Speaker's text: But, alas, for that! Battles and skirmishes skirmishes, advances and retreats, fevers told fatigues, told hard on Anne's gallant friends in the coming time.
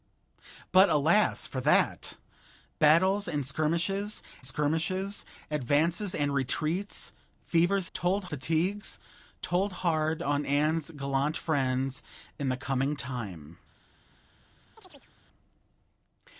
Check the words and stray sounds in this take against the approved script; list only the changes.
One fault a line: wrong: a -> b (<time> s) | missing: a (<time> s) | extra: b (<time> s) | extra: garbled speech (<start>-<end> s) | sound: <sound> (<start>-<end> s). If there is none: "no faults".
sound: chirp (14.8-15.1 s)